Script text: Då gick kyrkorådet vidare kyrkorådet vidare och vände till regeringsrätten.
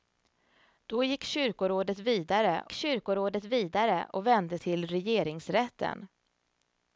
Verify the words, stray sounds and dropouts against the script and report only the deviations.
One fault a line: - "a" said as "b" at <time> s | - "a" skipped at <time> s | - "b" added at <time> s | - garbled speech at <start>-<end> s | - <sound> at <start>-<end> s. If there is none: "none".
none